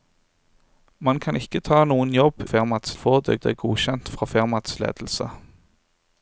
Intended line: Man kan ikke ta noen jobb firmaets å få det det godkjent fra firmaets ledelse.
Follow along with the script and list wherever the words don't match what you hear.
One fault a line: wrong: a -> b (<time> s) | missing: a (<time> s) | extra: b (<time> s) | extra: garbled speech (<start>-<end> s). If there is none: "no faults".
no faults